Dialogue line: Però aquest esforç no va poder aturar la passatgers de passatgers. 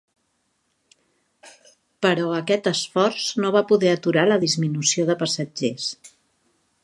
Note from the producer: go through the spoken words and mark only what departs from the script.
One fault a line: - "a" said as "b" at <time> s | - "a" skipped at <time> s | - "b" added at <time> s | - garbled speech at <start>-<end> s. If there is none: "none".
- "passatgers" said as "disminució" at 4.5 s